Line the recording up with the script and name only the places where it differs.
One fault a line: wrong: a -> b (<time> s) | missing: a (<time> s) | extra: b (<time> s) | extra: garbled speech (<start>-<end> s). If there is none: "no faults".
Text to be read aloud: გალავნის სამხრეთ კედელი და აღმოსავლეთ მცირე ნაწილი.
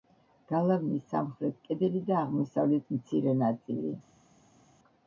no faults